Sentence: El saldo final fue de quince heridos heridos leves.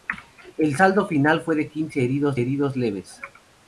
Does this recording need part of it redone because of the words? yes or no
no